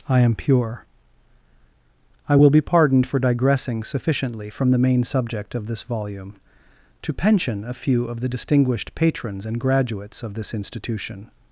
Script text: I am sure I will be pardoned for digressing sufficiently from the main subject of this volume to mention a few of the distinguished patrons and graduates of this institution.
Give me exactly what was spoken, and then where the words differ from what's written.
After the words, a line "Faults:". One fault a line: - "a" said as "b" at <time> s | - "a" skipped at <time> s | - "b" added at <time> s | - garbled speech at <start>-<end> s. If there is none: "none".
I am pure I will be pardoned for digressing sufficiently from the main subject of this volume to pension a few of the distinguished patrons and graduates of this institution.
Faults:
- "sure" said as "pure" at 0.3 s
- "mention" said as "pension" at 7.1 s